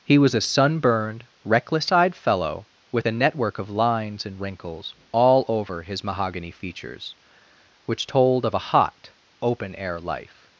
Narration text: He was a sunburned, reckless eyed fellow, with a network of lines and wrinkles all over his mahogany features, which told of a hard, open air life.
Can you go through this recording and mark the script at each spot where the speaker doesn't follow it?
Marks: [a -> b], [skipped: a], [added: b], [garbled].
He was a sunburned, reckless eyed fellow, with a network of lines and wrinkles all over his mahogany features, which told of a [hard, -> hot] open air life.